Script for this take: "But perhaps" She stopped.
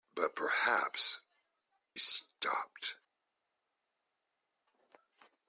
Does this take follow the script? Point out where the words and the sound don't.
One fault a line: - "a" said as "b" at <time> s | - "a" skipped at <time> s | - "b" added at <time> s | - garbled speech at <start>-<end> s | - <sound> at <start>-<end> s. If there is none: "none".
- "She" skipped at 1.2 s